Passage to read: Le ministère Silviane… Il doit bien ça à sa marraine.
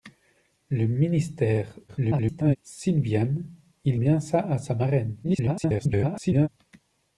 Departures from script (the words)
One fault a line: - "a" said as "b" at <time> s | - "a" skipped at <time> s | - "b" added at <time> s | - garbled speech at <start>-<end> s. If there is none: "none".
- garbled speech at 1.9-2.6 s
- "doit" skipped at 4.0 s
- garbled speech at 5.2-6.5 s